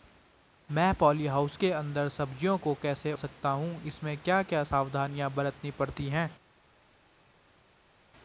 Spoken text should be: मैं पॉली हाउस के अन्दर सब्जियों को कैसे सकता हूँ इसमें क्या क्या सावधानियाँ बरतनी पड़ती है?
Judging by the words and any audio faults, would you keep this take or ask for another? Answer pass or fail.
pass